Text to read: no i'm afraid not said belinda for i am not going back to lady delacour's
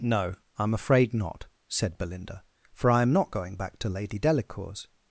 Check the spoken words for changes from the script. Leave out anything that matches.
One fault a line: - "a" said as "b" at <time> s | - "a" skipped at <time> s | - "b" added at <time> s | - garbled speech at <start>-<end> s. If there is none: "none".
none